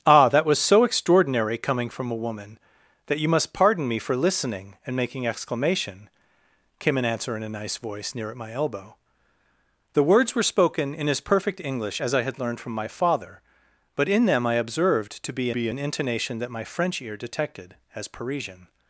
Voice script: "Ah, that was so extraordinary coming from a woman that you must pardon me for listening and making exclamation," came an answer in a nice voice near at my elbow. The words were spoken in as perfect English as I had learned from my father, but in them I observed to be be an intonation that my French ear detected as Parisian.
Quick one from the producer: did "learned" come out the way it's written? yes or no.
yes